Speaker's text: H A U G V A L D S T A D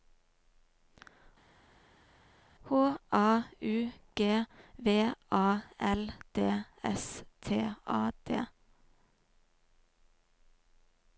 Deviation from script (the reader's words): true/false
false